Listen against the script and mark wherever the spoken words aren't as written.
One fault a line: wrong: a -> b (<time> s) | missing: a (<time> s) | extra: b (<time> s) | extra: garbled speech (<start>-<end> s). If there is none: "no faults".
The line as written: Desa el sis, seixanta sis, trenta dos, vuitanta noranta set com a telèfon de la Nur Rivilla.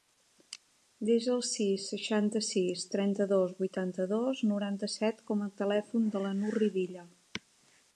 extra: dos (4.2 s)